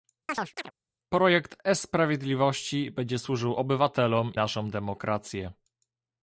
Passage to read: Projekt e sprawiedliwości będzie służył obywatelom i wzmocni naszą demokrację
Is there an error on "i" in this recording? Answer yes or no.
yes